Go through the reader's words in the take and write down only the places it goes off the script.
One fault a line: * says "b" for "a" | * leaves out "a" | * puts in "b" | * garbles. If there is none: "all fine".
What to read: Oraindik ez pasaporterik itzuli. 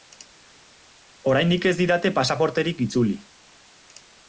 * puts in "didate"